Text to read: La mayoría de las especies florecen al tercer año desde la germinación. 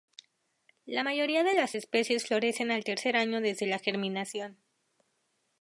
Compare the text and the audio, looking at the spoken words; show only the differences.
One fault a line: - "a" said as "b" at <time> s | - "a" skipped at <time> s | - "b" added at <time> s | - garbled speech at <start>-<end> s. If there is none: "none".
none